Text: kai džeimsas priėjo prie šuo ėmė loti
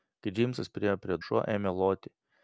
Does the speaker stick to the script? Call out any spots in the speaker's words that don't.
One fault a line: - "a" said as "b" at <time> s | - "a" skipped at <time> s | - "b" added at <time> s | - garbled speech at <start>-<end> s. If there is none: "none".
none